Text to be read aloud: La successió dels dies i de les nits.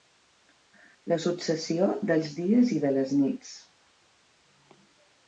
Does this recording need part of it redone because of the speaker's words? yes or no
no